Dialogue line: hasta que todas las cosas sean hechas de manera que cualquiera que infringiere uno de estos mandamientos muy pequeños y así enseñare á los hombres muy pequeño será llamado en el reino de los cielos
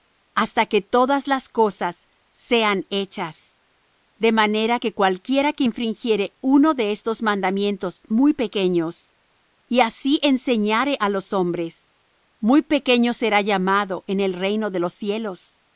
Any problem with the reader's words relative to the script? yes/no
no